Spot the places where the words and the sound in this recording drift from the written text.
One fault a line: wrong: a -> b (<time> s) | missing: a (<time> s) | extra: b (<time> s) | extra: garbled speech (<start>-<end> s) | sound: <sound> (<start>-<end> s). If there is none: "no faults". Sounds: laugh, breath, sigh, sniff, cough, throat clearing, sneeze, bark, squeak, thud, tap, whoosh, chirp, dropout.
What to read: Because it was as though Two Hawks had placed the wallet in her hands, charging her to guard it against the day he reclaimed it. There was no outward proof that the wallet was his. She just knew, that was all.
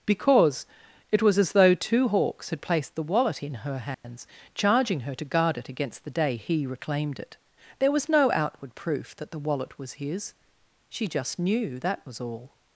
sound: dropout (3.9-4.0 s)